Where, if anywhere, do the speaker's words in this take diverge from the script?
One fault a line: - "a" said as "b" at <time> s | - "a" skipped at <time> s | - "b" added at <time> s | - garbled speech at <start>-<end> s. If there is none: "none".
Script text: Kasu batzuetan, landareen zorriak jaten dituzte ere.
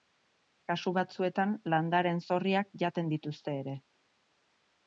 none